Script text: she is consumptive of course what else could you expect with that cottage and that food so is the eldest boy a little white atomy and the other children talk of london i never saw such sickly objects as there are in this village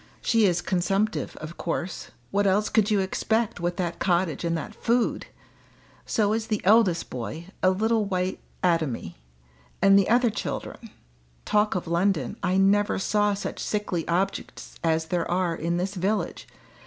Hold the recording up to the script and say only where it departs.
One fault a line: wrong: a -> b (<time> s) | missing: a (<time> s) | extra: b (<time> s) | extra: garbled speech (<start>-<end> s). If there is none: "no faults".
no faults